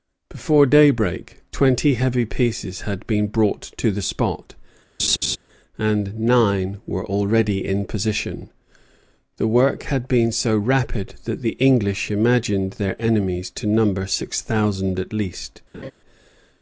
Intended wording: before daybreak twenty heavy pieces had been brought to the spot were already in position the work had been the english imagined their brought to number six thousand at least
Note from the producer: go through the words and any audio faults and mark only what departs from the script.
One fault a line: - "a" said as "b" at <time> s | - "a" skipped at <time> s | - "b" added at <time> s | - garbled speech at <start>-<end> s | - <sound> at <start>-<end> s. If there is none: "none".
- laugh at 5.0-5.4 s
- "and nine" added at 5.8 s
- "so rapid that" added at 10.3 s
- "brought" said as "enemies" at 13.0 s
- laugh at 15.7-15.9 s